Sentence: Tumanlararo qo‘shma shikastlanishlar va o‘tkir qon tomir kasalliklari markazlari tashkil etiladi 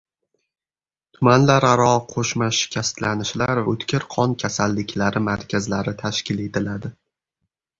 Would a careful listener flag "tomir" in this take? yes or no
yes